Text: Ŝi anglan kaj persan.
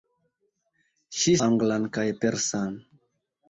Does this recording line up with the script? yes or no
yes